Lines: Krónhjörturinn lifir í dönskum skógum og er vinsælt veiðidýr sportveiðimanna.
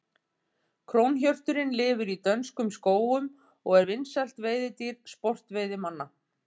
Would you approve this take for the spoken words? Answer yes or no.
yes